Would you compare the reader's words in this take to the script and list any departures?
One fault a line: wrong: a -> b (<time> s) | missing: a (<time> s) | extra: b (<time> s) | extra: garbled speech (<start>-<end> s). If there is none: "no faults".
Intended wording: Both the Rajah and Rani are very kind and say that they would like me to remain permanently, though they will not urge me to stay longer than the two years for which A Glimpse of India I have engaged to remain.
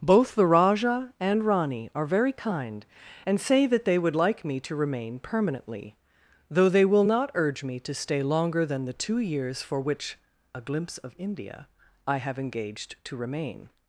no faults